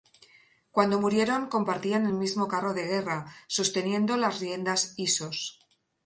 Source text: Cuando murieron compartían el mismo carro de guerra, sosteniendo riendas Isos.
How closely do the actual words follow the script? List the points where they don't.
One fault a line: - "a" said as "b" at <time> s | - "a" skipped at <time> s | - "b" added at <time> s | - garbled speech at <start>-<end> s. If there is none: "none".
- "las" added at 4.2 s